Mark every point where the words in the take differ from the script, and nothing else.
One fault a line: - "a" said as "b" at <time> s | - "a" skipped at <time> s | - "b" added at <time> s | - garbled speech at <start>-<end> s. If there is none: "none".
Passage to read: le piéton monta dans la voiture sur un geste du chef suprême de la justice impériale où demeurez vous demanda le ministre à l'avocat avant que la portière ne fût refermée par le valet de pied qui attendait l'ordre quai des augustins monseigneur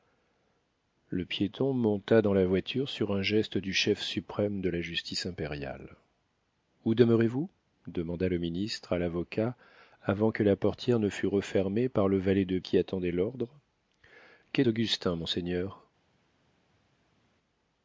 - "pied" skipped at 12.6 s
- "des" skipped at 14.6 s